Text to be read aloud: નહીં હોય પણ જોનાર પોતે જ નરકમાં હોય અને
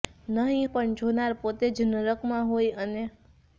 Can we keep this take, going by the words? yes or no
no